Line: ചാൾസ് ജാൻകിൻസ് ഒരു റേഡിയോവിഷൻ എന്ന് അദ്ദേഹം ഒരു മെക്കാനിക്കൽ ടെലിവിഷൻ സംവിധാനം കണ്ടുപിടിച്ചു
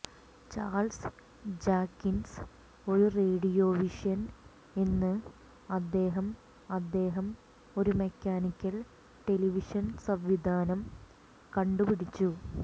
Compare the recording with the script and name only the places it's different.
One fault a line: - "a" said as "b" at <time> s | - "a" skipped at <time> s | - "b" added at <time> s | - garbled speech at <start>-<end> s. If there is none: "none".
- "അദ്ദേഹം" added at 6.7 s